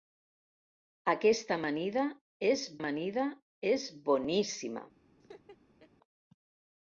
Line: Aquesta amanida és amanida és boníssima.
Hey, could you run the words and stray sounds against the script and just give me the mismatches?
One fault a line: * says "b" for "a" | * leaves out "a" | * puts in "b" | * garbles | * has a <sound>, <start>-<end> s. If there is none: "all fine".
* has a laugh, 5.2-5.9 s